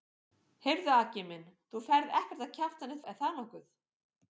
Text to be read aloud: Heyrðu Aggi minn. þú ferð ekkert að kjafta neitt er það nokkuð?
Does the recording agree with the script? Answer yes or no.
yes